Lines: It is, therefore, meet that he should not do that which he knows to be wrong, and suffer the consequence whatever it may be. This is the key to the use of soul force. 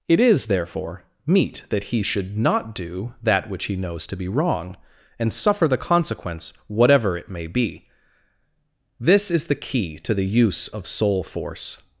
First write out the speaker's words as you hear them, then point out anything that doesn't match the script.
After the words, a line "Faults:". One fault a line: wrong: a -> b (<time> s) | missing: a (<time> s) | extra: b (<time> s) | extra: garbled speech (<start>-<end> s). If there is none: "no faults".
It is, therefore, meet that he should not do that which he knows to be wrong, and suffer the consequence whatever it may be. This is the key to the use of soul force.
Faults:
no faults